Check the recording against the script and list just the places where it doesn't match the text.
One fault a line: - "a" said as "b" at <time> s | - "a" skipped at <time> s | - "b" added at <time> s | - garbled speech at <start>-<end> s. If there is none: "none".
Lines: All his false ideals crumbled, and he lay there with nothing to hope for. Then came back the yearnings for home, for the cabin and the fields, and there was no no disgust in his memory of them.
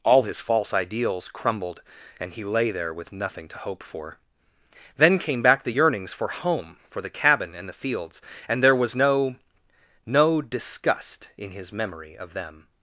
none